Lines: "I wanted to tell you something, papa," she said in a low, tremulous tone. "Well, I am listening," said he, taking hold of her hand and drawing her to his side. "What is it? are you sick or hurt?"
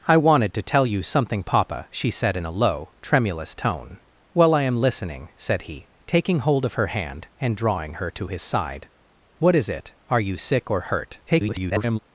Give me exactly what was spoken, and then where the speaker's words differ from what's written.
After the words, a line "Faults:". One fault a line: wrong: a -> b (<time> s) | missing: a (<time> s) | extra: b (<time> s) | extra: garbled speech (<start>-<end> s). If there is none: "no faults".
"I wanted to tell you something, papa," she said in a low, tremulous tone. "Well, I am listening," said he, taking hold of her hand and drawing her to his side. "What is it? are you sick or hurt?" [garbled]
Faults:
extra: garbled speech (11.3-12.0 s)